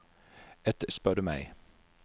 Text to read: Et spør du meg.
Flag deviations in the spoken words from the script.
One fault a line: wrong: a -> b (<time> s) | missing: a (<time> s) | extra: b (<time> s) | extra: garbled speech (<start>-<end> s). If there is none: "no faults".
no faults